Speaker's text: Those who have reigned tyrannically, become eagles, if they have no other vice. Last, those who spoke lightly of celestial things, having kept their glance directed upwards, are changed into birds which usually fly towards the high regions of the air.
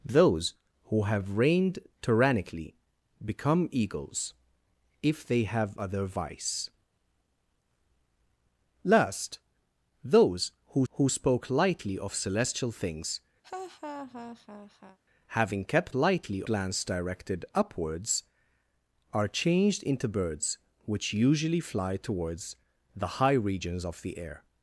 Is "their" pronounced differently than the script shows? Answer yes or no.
yes